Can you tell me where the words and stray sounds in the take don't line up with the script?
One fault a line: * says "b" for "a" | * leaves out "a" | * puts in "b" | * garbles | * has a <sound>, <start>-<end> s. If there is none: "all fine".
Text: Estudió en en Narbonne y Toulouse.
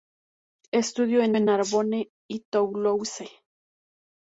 all fine